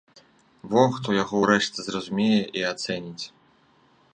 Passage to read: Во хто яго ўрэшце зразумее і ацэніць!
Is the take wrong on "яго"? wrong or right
right